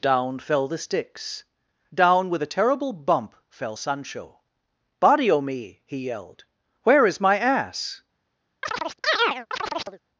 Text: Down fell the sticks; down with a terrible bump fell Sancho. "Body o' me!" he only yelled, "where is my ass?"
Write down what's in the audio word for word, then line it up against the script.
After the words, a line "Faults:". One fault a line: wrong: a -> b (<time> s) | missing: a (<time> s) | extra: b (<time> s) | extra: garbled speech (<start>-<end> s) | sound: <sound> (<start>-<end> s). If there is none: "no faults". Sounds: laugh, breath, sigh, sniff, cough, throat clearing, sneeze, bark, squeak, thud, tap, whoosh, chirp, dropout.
Down fell the sticks; down with a terrible bump fell Sancho. "Body o' me!" he yelled, "where is my ass?"
Faults:
missing: only (6.1 s)
sound: chirp (8.6-10.0 s)